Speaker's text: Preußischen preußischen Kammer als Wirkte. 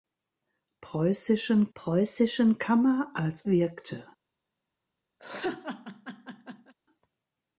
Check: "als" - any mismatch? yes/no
no